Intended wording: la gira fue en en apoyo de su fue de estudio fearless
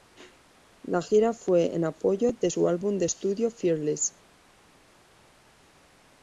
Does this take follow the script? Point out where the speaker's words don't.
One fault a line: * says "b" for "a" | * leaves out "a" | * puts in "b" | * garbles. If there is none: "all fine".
* leaves out "en"
* says "álbum" for "fue"